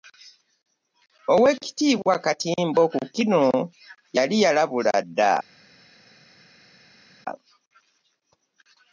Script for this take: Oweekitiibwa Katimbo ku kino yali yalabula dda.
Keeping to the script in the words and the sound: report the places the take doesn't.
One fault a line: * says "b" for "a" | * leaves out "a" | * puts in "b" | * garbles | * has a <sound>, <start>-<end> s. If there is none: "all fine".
all fine